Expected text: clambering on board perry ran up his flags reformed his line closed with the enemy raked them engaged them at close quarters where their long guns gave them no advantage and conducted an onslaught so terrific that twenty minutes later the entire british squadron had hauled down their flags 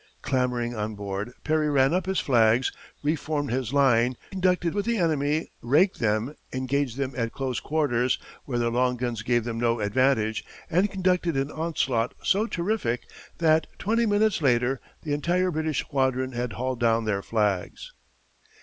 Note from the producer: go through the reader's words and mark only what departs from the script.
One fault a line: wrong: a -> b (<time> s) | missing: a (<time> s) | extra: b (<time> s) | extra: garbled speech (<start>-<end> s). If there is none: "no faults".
wrong: closed -> conducted (4.3 s)